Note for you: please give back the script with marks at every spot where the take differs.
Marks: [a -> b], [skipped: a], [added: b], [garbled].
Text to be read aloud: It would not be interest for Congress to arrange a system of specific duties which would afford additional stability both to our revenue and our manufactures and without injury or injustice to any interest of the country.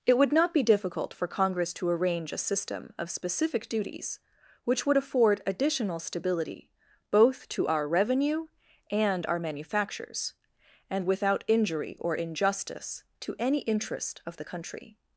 It would not be [interest -> difficult] for Congress to arrange a system of specific duties which would afford additional stability both to our revenue and our manufactures and without injury or injustice to any interest of the country.